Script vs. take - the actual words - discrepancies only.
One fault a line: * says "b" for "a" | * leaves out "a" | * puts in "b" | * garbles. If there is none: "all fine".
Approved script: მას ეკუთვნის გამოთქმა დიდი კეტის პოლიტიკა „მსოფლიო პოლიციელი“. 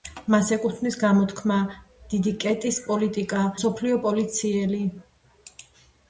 all fine